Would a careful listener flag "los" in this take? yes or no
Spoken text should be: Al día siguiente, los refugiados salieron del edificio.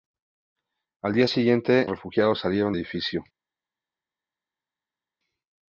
yes